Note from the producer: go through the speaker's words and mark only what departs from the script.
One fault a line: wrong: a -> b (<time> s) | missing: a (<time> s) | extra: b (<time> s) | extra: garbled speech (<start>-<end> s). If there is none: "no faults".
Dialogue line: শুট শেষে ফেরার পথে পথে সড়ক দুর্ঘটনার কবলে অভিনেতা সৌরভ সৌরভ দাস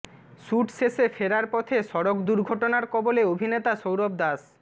missing: পথে (1.8 s)
missing: সৌরভ (4.1 s)